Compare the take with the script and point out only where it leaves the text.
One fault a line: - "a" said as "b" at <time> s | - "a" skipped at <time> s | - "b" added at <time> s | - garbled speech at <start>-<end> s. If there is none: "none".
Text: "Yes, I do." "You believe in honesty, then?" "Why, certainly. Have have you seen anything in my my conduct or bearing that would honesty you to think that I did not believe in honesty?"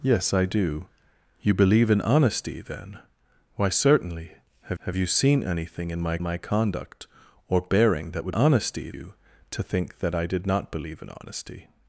none